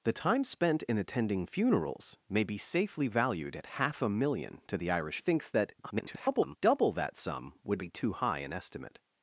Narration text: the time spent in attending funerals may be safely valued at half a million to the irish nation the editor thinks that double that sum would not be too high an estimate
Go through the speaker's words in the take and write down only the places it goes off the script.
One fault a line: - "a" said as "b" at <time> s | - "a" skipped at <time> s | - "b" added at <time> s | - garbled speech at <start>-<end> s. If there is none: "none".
- "nation the editor" skipped at 5.2 s
- garbled speech at 5.8-6.6 s
- "not" skipped at 7.8 s